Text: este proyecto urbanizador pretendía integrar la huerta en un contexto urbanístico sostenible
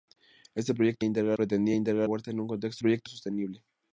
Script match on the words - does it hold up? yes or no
no